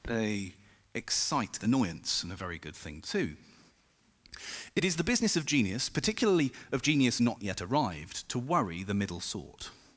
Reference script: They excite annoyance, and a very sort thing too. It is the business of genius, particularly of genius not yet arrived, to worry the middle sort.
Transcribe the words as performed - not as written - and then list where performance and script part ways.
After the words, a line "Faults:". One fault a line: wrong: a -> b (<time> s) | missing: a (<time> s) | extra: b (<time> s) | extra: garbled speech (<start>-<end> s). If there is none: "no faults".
They excite annoyance, and a very good thing too. It is the business of genius, particularly of genius not yet arrived, to worry the middle sort.
Faults:
wrong: sort -> good (2.6 s)